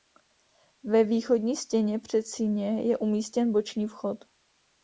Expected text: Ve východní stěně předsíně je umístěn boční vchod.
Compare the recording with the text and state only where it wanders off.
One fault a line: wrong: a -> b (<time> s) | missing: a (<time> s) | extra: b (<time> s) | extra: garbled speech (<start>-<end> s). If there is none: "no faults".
no faults